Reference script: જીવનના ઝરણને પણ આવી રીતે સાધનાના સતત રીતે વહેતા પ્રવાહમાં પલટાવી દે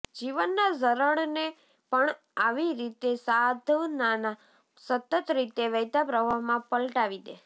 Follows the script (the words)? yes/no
yes